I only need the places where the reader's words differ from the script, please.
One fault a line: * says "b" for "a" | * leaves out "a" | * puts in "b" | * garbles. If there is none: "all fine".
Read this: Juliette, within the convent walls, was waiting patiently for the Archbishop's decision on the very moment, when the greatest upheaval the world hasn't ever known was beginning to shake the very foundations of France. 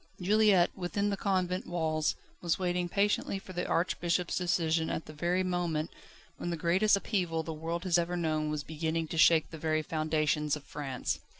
* says "at" for "on"
* says "has" for "hasn't"